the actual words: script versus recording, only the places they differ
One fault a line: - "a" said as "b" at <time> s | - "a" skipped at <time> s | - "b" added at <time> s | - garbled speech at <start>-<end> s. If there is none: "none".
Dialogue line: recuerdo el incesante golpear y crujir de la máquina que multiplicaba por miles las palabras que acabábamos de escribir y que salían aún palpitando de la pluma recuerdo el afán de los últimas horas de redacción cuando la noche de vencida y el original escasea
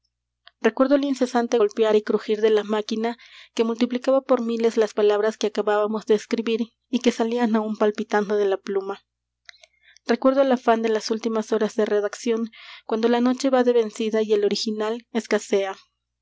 - "los" said as "las" at 10.9 s
- "va" added at 13.5 s